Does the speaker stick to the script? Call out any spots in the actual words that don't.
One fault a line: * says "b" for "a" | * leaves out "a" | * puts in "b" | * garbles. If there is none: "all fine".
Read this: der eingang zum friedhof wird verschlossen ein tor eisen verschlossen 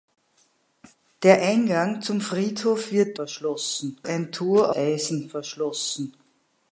all fine